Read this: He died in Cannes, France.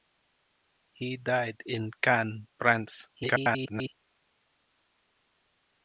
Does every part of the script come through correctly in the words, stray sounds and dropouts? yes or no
no